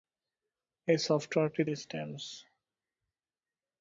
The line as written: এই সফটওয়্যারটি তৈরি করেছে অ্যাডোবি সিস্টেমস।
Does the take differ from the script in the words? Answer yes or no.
yes